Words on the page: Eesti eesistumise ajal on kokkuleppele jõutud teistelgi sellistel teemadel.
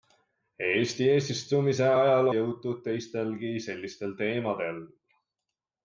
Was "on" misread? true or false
true